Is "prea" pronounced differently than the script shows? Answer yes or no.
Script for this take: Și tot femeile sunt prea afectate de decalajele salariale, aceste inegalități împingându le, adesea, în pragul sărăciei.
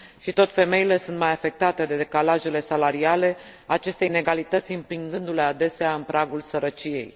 yes